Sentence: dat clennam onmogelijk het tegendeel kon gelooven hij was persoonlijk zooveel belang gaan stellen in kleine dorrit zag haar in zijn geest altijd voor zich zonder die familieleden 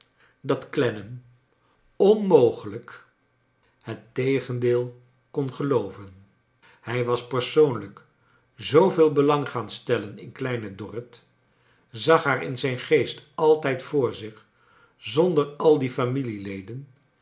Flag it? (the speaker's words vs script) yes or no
yes